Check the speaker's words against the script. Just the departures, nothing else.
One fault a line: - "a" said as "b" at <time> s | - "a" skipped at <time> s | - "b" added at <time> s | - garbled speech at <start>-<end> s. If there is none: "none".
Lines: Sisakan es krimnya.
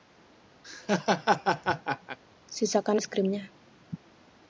none